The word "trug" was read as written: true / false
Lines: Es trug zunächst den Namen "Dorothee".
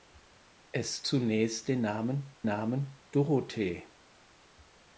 false